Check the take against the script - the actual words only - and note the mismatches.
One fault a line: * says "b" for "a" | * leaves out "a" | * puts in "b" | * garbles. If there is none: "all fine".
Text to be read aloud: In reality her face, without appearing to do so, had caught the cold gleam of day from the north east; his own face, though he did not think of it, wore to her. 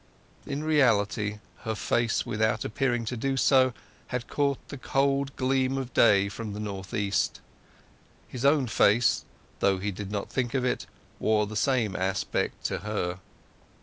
* puts in "the same aspect"